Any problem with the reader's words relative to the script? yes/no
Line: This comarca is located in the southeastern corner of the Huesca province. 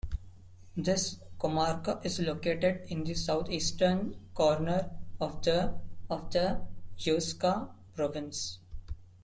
yes